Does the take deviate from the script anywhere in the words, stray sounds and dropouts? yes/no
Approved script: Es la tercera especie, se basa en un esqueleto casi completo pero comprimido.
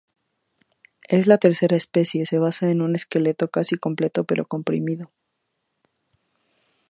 no